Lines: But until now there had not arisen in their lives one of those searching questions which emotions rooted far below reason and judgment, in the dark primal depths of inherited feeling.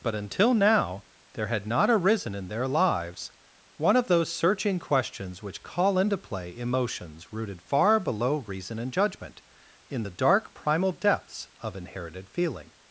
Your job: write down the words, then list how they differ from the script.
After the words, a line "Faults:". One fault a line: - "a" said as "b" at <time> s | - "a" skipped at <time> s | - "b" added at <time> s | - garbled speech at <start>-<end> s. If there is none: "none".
But until now there had not arisen in their lives one of those searching questions which call into play emotions rooted far below reason and judgment, in the dark primal depths of inherited feeling.
Faults:
- "call into play" added at 5.6 s